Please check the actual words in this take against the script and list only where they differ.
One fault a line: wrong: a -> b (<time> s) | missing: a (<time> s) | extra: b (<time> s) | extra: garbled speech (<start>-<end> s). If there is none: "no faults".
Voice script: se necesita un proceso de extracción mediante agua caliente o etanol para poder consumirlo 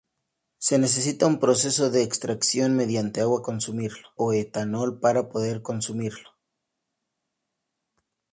wrong: caliente -> consumirlo (3.4 s)